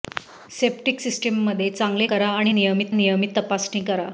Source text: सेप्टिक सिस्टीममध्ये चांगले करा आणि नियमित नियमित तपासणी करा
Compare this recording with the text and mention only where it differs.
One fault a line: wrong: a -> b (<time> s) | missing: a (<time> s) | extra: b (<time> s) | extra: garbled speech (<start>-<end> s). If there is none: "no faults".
no faults